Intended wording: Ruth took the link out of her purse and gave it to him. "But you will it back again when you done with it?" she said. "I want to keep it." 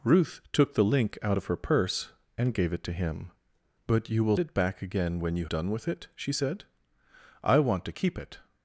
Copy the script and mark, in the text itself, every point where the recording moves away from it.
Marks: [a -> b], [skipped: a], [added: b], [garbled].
Ruth took the link out of her purse and gave it to him. "But you will it back again when you done with it?" she said. "I want to keep it."